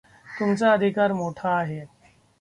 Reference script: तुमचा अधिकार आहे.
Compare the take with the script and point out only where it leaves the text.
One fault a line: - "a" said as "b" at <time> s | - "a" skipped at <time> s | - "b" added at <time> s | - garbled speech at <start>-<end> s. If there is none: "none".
- "मोठा" added at 1.1 s